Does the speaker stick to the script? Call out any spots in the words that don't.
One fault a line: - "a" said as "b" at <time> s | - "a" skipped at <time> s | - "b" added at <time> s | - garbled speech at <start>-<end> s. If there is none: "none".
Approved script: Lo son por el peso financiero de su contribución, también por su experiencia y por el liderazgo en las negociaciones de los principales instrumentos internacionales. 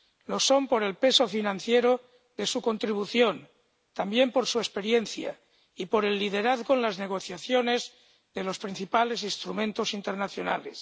none